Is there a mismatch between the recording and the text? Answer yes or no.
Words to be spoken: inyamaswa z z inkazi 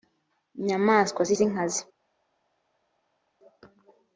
no